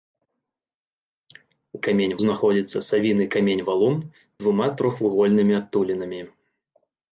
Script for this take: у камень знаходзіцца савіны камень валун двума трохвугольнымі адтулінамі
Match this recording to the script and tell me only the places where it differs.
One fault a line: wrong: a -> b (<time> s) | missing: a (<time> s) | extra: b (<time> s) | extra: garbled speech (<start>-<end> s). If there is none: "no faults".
no faults